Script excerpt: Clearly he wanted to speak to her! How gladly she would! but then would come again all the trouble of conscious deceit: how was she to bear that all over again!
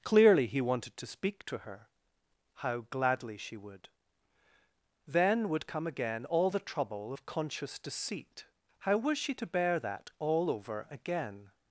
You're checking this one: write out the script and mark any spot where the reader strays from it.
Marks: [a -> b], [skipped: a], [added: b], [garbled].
Clearly he wanted to speak to her! How gladly she would! [skipped: but] then would come again all the trouble of conscious deceit: how was she to bear that all over again!